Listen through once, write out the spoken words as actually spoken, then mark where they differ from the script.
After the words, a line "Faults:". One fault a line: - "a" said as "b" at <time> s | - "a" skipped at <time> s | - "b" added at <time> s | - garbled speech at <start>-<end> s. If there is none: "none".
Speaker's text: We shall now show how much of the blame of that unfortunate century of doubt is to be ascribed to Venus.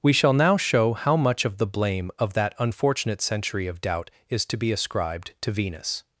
We shall now show how much of the blame of that unfortunate century of doubt is to be ascribed to Venus.
Faults:
none